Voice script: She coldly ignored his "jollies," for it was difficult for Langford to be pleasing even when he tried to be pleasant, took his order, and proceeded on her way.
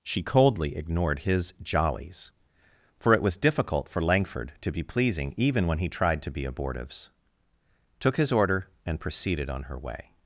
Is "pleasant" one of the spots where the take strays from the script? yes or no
yes